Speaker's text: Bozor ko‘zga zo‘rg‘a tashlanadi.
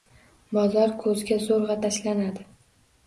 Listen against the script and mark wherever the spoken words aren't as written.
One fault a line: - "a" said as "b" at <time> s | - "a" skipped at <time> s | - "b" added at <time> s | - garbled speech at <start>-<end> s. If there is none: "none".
none